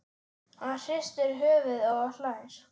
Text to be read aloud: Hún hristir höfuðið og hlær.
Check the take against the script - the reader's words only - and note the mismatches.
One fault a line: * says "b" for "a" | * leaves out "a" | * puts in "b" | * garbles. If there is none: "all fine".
* says "Hann" for "Hún"